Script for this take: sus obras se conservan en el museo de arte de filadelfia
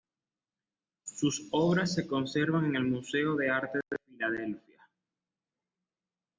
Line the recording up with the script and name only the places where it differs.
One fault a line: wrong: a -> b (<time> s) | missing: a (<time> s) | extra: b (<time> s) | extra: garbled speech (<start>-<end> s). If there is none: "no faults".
no faults